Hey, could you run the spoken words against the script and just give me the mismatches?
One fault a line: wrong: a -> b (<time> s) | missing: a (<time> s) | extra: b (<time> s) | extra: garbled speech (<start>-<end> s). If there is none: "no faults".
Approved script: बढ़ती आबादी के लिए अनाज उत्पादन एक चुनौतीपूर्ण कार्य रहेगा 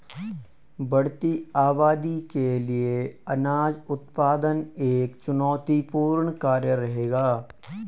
no faults